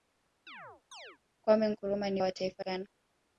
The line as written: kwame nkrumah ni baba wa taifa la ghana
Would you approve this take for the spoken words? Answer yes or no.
no